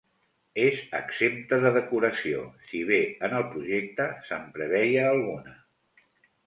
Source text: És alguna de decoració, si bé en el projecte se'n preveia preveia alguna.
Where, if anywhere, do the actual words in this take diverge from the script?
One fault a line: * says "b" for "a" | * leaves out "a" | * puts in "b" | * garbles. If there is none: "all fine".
* says "exempta" for "alguna"
* leaves out "preveia"